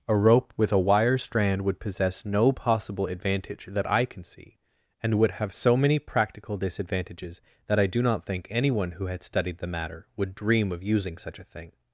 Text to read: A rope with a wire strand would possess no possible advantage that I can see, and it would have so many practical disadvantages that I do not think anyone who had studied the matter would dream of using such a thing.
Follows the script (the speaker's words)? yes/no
no